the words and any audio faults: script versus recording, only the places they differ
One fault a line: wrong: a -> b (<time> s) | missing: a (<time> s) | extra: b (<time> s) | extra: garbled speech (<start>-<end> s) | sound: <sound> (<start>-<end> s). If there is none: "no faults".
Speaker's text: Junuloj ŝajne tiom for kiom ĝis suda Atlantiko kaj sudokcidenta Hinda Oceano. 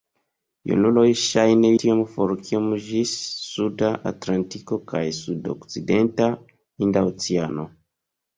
no faults